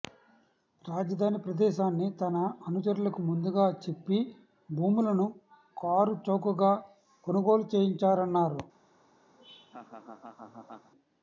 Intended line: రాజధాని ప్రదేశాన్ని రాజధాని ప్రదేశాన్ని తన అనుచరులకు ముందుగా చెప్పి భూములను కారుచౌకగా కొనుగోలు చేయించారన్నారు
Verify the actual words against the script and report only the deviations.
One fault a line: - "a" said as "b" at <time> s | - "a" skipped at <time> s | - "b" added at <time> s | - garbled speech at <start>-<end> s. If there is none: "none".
- "రాజధాని ప్రదేశాన్ని" skipped at 2.1 s